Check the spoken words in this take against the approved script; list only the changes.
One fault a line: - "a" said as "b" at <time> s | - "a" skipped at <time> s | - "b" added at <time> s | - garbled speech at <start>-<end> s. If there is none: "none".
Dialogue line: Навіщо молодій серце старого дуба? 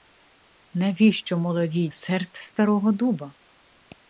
none